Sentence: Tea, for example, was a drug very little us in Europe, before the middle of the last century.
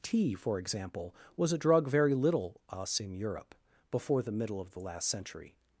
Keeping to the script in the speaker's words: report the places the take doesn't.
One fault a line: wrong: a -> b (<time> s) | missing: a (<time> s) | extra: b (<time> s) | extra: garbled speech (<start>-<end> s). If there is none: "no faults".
no faults